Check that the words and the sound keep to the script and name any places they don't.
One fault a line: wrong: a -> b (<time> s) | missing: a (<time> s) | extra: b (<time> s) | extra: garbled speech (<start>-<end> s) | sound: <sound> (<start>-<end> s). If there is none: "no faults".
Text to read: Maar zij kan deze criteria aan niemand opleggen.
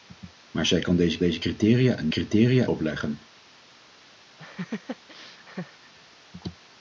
extra: deze (1.2 s)
wrong: niemand -> criteria (2.1 s)
sound: laugh (4.4-5.9 s)